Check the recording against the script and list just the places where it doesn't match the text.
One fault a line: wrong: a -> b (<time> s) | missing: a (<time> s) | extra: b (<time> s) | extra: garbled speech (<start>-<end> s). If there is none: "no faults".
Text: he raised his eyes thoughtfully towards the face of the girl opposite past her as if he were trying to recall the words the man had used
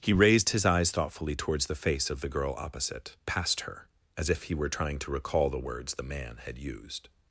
no faults